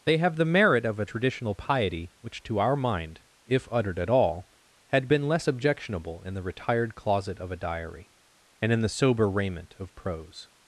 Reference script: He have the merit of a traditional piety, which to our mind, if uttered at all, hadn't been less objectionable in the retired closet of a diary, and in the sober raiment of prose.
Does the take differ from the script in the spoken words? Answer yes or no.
yes